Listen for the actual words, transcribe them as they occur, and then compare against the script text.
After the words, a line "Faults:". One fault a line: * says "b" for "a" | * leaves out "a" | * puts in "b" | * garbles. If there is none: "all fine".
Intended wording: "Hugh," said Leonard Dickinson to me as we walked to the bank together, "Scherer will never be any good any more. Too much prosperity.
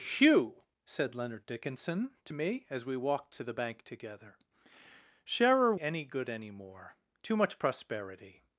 "Hugh," said Leonard Dickinson to me as we walked to the bank together, "Scherer any good any more. Too much prosperity.
Faults:
* leaves out "will never be"